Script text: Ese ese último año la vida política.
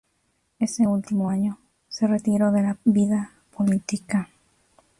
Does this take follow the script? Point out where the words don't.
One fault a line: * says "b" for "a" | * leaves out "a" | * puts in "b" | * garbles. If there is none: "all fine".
* leaves out "ese"
* puts in "se retiró de"